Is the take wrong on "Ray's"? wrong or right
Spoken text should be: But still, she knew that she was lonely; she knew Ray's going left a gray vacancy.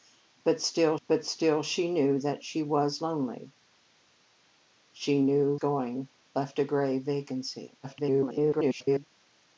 wrong